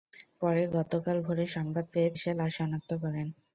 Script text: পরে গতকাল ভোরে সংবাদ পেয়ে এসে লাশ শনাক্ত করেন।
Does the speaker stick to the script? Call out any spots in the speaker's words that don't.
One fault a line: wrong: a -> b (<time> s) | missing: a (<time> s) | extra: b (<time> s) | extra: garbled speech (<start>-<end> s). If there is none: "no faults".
no faults